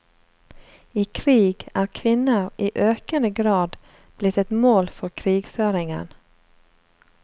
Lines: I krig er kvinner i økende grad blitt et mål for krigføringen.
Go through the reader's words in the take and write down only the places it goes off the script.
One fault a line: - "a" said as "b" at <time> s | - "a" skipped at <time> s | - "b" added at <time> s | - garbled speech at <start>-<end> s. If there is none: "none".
none